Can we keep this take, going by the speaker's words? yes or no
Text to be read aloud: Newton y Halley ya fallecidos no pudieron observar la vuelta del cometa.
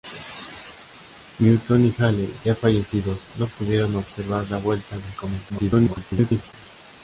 no